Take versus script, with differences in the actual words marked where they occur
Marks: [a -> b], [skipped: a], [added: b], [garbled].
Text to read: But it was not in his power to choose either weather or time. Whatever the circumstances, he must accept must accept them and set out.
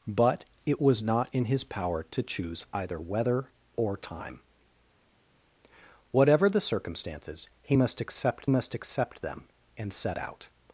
But it was not in his power to choose either weather or time. Whatever the circumstances, he must accept must accept them and set out.